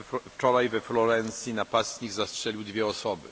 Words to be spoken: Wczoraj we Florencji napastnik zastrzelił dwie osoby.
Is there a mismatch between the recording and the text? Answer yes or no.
no